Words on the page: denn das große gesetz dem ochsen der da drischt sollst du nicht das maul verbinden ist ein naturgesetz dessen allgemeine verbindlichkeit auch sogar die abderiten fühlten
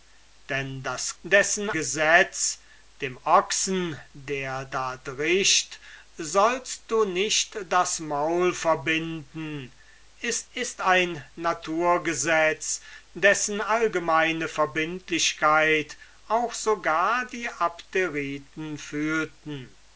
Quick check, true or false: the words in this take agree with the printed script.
false